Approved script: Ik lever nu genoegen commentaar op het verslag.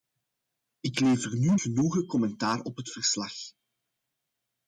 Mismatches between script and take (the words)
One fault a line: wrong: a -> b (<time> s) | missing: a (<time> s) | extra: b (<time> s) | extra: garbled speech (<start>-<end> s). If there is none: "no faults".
no faults